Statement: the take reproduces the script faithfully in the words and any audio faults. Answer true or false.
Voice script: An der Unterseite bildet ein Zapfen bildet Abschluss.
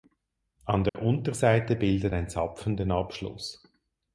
false